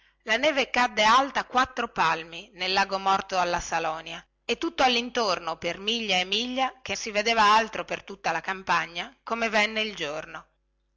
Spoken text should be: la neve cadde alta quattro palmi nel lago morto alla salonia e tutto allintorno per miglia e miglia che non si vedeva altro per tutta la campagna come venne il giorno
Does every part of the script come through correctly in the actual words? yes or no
no